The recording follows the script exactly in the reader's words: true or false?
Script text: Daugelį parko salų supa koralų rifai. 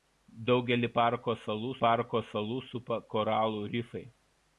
false